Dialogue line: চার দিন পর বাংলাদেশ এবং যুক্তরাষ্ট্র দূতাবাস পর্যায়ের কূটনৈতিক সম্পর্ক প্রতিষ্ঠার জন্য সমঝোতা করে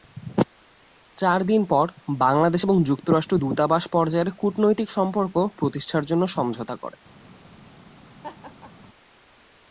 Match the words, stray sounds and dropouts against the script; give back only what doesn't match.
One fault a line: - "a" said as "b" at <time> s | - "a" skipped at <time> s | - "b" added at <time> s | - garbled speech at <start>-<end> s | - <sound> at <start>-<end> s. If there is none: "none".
- laugh at 8.2-8.9 s